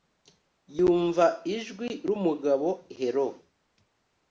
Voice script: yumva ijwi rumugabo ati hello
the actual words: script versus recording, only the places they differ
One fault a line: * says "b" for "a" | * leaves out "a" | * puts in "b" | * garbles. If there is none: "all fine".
* leaves out "ati"